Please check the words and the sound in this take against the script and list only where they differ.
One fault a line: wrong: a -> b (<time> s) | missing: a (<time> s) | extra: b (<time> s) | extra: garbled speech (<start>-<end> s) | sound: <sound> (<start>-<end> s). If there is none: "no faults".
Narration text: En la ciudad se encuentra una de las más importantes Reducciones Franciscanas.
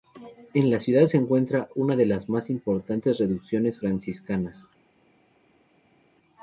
no faults